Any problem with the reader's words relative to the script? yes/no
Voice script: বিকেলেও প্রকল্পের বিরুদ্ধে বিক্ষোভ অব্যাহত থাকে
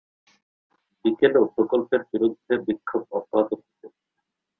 no